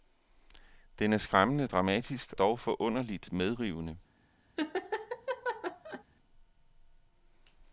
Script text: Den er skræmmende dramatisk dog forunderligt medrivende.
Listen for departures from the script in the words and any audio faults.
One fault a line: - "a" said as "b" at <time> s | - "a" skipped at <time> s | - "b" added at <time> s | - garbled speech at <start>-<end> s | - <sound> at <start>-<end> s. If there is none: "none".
- laugh at 4.6-6.0 s